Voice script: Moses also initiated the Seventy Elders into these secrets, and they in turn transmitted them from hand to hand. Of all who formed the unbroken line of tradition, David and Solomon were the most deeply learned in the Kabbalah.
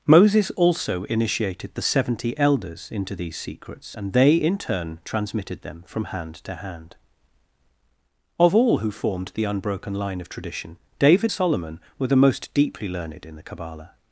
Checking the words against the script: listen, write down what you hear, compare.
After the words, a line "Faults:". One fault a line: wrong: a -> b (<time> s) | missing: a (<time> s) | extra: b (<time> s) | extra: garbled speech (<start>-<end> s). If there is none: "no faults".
Moses also initiated the Seventy Elders into these secrets, and they in turn transmitted them from hand to hand. Of all who formed the unbroken line of tradition, David Solomon were the most deeply learned in the Kabbalah.
Faults:
missing: and (11.3 s)